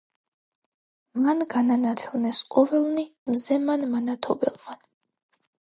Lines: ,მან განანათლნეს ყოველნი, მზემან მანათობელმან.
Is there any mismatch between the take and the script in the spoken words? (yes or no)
no